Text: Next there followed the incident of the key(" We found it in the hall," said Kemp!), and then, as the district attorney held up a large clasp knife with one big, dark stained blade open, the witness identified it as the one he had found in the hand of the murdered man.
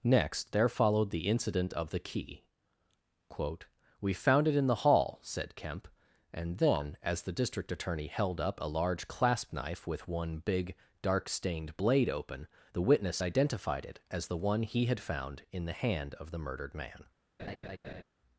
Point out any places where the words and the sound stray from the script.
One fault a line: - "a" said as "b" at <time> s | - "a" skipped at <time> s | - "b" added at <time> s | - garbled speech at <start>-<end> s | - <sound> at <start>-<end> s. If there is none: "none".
- "quote" added at 3.3 s
- laugh at 17.4-18.0 s